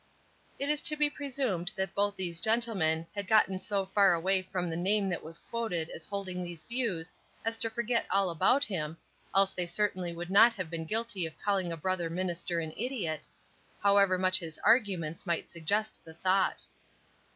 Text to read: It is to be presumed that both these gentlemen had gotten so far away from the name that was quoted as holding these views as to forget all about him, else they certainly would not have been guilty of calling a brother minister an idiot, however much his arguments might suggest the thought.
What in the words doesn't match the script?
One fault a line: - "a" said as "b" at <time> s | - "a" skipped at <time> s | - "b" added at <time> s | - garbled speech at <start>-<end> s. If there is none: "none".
none